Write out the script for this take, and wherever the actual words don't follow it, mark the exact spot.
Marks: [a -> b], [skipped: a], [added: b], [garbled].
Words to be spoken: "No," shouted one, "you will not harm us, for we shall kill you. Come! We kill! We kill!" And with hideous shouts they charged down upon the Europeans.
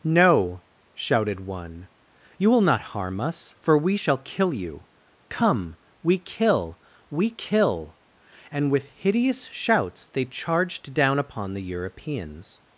"No," shouted one, "you will not harm us, for we shall kill you. Come! We kill! We kill!" And with hideous shouts they charged down upon the Europeans.